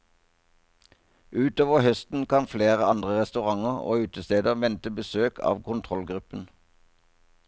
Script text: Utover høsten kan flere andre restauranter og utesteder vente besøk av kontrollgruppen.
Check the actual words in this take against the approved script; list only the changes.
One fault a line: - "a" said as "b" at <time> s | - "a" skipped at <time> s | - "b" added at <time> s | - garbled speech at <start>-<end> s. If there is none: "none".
none